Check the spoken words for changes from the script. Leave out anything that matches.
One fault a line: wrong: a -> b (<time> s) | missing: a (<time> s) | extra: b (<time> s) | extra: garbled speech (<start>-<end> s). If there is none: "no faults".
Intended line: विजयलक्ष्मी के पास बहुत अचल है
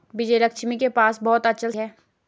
no faults